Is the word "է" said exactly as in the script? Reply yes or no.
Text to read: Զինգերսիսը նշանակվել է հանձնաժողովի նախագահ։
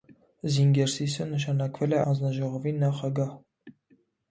yes